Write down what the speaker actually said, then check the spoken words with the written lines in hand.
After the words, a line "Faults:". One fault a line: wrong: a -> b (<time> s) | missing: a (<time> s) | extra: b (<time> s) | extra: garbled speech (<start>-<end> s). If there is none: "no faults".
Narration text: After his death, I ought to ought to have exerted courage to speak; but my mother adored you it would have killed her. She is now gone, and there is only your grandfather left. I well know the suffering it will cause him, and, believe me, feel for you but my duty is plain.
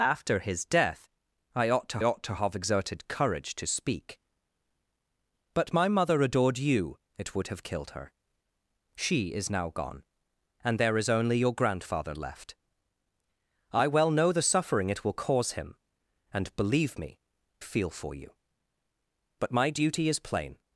After his death, I ought to ought to have exerted courage to speak; but my mother adored you it would have killed her. She is now gone, and there is only your grandfather left. I well know the suffering it will cause him, and, believe me, feel for you but my duty is plain.
Faults:
no faults